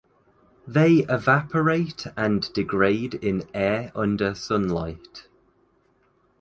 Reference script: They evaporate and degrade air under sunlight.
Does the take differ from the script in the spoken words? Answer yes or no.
yes